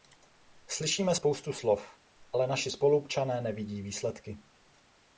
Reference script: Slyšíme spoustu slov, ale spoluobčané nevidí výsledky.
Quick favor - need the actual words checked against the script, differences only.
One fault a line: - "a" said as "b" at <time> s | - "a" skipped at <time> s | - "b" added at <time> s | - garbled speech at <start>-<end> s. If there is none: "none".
- "naši" added at 2.5 s